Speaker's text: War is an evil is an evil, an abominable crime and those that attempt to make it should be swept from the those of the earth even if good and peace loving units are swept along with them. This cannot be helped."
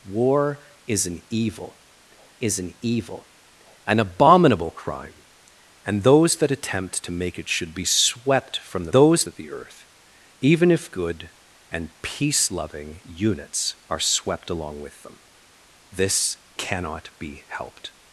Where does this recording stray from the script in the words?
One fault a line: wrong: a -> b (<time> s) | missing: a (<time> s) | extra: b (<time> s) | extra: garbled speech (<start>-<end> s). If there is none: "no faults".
no faults